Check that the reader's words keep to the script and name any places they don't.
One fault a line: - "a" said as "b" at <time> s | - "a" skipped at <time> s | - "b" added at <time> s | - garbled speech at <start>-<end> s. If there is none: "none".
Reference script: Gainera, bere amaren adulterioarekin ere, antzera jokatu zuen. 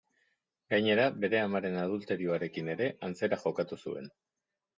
none